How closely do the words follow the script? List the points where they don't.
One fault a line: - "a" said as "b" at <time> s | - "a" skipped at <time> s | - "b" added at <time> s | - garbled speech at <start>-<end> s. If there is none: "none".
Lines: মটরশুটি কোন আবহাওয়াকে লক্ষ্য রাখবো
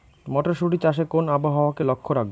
- "চাষে" added at 0.8 s